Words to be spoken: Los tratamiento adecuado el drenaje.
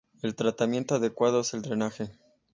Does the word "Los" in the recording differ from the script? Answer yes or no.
yes